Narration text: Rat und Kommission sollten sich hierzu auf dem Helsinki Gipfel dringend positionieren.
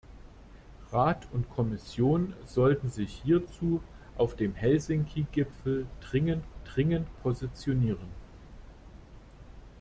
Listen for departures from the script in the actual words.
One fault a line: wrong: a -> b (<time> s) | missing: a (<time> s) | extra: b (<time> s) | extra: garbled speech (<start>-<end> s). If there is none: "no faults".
extra: dringend (6.6 s)